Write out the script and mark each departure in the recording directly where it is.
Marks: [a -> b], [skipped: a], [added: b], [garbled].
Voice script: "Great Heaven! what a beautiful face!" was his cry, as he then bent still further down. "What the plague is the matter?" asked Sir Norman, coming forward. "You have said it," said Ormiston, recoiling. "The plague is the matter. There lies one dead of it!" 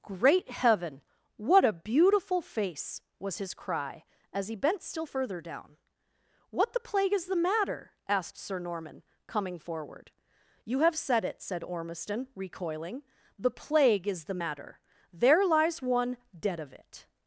"Great Heaven! what a beautiful face!" was his cry, as he [skipped: then] bent still further down. "What the plague is the matter?" asked Sir Norman, coming forward. "You have said it," said Ormiston, recoiling. "The plague is the matter. There lies one dead of it!"